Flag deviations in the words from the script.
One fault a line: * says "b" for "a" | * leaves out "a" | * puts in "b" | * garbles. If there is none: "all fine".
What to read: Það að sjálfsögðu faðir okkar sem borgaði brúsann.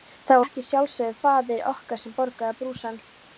all fine